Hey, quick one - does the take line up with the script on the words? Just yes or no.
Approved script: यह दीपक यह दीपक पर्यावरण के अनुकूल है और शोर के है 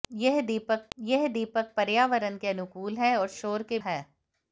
yes